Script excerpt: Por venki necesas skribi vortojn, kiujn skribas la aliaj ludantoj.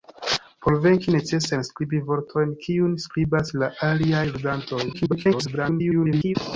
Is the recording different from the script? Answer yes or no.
yes